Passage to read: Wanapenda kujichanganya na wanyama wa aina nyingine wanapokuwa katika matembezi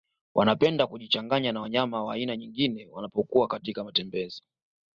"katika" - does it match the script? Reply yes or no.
yes